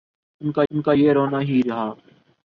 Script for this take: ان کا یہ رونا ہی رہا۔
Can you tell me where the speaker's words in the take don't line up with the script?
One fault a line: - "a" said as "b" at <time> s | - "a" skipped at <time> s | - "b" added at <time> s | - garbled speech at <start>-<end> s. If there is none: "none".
- "ان کا" added at 0.7 s